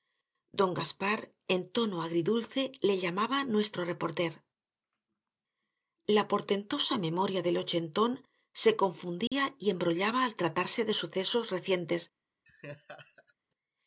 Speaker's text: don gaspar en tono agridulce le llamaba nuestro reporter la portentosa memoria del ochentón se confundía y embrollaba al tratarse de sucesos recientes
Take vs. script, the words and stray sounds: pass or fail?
fail